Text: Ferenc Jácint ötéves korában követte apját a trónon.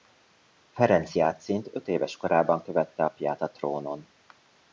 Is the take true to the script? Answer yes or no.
yes